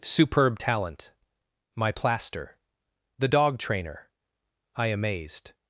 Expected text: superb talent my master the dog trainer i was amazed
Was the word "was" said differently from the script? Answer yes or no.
yes